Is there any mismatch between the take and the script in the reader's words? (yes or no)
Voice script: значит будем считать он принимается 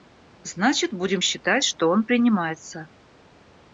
yes